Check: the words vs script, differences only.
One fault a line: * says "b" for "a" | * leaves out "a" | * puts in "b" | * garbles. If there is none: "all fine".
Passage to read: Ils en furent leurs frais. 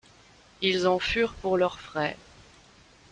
* puts in "pour"